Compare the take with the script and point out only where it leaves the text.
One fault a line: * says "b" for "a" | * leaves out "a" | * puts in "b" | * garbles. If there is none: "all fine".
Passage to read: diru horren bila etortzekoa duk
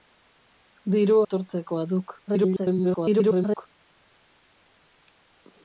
* leaves out "horren bila"
* garbles